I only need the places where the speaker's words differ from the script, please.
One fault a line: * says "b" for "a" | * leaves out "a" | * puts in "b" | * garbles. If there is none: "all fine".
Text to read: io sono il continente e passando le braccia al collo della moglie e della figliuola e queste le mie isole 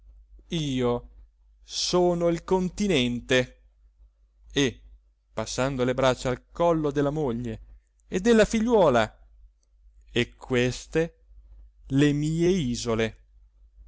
all fine